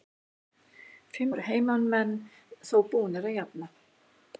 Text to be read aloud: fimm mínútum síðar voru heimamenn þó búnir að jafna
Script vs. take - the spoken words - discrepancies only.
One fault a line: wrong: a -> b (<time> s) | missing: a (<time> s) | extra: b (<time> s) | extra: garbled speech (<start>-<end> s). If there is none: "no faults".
missing: mínútum síðar (1.4 s)